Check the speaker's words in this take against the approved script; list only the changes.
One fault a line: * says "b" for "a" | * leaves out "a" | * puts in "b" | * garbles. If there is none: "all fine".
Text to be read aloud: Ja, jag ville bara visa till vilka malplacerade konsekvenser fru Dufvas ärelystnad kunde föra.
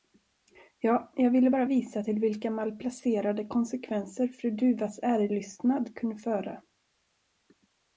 all fine